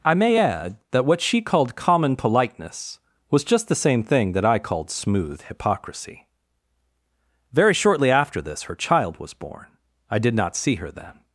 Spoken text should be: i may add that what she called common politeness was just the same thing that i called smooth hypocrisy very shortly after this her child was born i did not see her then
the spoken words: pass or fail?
pass